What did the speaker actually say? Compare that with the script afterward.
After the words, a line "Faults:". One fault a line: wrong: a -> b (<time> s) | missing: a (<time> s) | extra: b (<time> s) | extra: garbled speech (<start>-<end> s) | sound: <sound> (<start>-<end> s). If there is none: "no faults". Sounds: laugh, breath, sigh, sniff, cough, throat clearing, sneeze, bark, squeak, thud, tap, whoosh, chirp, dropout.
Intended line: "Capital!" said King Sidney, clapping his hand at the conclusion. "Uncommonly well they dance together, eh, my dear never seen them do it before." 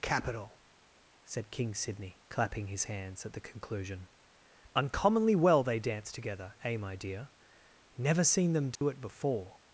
"Capital!" said King Sidney, clapping his hands at the conclusion. "Uncommonly well they dance together, eh, my dear never seen them do it before."
Faults:
wrong: hand -> hands (2.9 s)
sound: dropout (8.8-8.8 s)